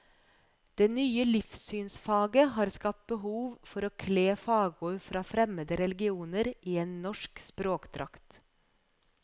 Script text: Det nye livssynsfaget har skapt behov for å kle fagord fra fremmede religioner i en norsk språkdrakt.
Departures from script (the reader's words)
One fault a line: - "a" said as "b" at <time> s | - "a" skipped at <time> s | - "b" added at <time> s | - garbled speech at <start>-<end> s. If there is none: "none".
none